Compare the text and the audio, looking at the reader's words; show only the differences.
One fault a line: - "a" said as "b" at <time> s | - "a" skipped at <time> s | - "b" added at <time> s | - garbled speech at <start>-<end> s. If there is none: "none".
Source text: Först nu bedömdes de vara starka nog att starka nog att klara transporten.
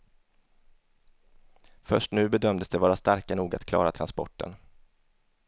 - "starka nog att" skipped at 3.6 s